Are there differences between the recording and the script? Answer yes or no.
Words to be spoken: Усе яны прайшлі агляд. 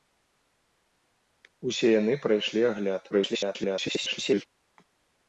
yes